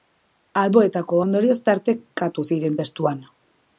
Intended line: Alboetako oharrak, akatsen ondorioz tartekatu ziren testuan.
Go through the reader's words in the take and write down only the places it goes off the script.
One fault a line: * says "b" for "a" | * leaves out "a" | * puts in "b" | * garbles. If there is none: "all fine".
* leaves out "oharrak akatsen"